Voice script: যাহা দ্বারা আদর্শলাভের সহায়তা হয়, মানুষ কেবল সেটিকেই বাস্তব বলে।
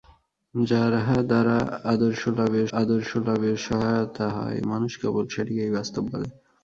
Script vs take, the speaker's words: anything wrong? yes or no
yes